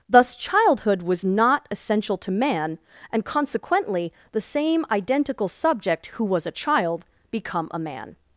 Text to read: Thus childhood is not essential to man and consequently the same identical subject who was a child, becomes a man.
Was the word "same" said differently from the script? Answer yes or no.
no